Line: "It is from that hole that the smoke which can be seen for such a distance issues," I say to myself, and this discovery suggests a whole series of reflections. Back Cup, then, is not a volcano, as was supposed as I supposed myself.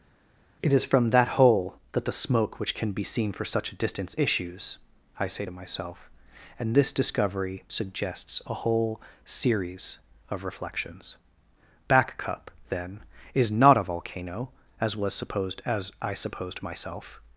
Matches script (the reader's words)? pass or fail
pass